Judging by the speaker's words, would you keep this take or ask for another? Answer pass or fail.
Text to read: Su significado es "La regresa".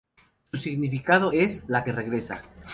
fail